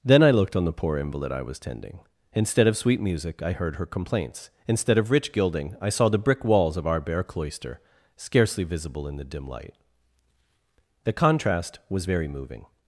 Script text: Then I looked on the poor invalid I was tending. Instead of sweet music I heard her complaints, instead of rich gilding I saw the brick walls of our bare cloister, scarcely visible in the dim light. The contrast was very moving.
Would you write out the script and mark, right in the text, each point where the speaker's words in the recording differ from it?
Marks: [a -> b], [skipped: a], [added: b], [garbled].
Then I looked on the poor invalid I was tending. Instead of sweet music I heard her complaints, instead of rich gilding I saw the brick walls of our bare cloister, scarcely visible in the dim light. The contrast was very moving.